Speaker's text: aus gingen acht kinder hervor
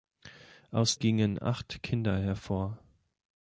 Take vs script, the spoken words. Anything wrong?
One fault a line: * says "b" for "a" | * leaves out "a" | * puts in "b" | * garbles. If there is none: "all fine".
all fine